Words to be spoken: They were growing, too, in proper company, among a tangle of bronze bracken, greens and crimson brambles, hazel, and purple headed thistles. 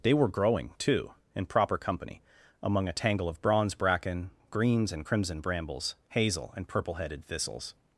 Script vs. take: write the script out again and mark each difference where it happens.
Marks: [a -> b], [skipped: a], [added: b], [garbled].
They were growing, too, in proper company, among a tangle of bronze bracken, greens and crimson brambles, hazel, and purple headed thistles.